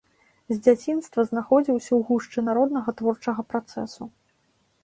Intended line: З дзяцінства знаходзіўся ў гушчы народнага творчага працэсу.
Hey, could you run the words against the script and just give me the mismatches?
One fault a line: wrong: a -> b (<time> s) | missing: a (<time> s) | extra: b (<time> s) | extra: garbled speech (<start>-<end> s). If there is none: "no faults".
no faults